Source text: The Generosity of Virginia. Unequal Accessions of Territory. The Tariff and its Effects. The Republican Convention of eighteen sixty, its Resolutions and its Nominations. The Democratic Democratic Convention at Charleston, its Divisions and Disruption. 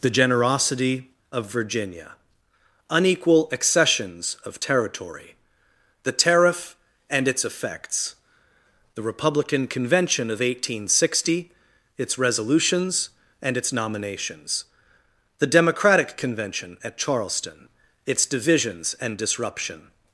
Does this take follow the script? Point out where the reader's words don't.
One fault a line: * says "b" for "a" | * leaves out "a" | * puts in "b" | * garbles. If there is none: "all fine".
* leaves out "Democratic"